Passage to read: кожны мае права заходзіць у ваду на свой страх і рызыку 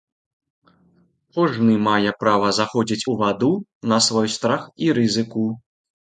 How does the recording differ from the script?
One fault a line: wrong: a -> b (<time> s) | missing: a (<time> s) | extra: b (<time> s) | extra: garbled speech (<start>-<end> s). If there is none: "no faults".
no faults